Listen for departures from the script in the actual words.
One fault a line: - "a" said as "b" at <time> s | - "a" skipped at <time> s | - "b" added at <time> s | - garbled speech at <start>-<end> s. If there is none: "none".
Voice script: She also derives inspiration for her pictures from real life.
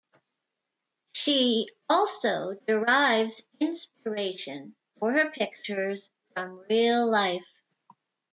none